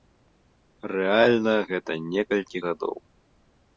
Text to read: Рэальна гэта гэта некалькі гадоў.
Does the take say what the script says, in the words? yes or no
no